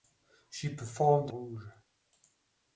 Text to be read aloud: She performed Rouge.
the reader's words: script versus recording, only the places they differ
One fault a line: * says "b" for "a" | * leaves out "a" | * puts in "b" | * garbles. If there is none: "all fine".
all fine